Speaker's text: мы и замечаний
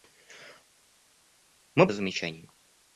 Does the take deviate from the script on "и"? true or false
false